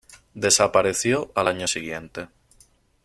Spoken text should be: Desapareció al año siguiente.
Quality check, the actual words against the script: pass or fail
pass